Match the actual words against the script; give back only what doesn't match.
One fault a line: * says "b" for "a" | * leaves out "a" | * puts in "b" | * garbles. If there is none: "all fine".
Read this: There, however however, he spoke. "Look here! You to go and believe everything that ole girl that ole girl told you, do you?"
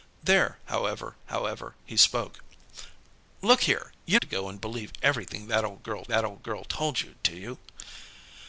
all fine